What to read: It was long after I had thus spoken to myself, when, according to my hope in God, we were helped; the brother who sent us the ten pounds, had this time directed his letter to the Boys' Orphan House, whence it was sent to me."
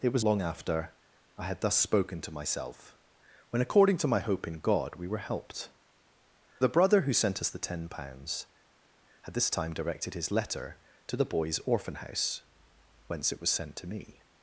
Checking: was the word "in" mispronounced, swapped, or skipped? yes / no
no